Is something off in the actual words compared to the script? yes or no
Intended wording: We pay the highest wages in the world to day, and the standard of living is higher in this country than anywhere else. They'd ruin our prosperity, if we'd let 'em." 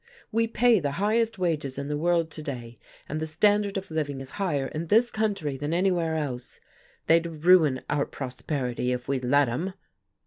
no